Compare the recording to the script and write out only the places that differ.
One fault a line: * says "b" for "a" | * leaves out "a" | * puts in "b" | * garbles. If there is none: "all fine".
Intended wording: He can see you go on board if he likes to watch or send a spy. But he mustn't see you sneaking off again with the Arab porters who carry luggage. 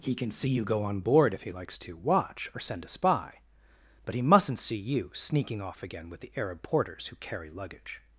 all fine